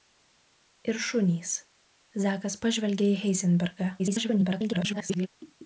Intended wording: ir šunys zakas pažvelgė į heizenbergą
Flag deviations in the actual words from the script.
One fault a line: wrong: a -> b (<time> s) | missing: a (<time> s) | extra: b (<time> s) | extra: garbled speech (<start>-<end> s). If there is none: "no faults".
extra: garbled speech (4.0-5.3 s)